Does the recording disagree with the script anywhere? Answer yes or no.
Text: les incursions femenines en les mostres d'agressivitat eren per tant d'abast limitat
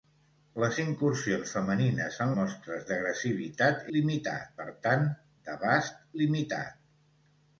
yes